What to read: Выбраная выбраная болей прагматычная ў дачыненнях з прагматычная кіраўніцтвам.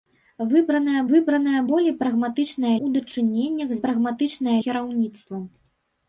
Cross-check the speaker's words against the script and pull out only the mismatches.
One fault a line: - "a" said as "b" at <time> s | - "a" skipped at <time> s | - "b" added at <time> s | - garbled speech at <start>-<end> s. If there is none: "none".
none